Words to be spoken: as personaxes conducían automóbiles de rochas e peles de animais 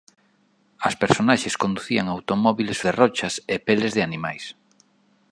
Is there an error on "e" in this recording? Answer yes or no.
no